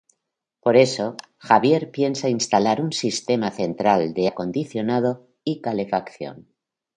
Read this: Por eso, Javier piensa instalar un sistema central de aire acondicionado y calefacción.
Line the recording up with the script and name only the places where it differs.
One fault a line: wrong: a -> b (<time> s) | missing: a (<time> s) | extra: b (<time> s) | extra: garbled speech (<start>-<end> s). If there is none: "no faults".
missing: aire (4.3 s)